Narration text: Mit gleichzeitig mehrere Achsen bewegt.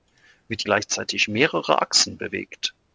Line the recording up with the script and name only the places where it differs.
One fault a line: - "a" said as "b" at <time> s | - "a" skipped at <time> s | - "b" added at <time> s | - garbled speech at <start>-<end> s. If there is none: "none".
none